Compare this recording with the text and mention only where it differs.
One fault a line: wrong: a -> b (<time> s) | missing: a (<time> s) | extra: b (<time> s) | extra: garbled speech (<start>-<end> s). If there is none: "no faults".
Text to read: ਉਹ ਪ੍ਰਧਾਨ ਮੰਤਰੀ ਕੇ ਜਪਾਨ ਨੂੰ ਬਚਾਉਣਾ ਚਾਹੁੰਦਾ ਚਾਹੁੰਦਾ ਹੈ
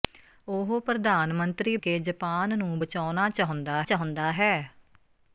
no faults